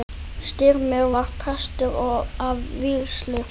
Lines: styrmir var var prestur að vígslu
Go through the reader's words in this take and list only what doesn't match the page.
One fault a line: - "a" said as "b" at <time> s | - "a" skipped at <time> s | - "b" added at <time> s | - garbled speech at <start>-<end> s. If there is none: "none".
- "var" skipped at 1.3 s